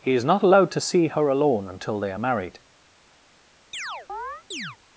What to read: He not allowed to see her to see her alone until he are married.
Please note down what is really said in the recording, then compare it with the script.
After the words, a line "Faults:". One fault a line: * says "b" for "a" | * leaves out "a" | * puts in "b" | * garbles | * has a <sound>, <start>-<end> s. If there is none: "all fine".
He is not allowed to see her alone until they are married.
Faults:
* puts in "is"
* leaves out "to see her"
* says "they" for "he"
* has a chirp, 3.7-4.8 s